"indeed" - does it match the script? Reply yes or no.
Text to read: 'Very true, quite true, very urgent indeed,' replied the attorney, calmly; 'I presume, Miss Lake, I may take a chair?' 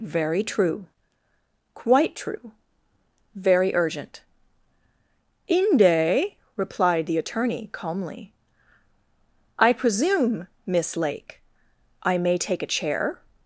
no